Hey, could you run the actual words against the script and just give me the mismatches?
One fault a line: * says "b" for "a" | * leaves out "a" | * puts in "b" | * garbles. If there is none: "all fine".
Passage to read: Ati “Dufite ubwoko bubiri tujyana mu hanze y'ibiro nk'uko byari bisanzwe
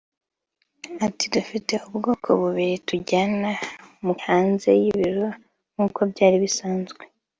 all fine